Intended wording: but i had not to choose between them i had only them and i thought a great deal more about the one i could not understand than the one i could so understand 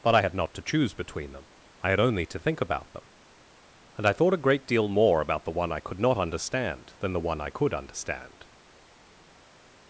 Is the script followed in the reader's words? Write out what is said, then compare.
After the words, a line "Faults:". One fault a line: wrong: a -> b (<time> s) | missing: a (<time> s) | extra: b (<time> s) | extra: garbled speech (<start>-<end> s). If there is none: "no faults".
but i had not to choose between them i had only to think about them and i thought a great deal more about the one i could not understand than the one i could understand
Faults:
extra: to think about (2.3 s)
missing: so (7.7 s)